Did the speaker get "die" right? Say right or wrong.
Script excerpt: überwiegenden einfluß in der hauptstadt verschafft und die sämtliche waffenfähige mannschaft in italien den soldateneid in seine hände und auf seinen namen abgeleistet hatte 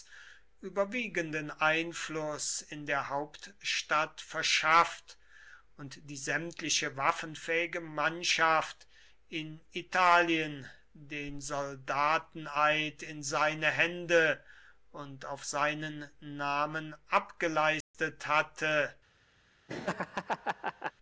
right